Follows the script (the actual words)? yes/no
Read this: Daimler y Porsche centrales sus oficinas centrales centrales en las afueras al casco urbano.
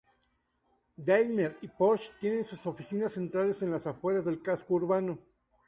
no